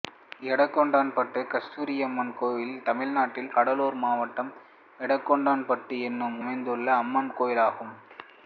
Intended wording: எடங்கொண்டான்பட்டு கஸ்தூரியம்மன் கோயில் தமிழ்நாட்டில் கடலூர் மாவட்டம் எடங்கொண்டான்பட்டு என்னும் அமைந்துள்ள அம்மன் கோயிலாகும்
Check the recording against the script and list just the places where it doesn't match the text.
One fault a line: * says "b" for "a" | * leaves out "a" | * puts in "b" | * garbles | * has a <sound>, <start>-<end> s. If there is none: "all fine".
all fine